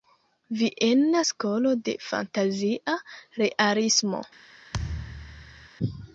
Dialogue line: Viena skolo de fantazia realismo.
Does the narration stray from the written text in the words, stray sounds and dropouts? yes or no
yes